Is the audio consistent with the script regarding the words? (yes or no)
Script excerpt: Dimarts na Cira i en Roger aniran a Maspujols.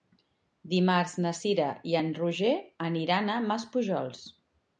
yes